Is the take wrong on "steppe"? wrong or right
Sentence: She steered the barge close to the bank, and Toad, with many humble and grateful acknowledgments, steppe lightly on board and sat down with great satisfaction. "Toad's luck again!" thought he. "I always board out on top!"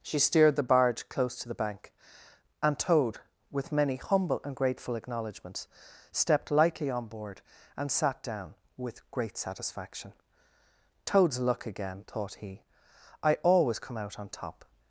wrong